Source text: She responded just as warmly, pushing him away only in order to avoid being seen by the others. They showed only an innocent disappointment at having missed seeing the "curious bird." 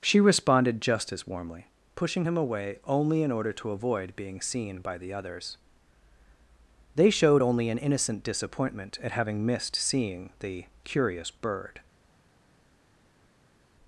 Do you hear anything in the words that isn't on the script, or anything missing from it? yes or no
no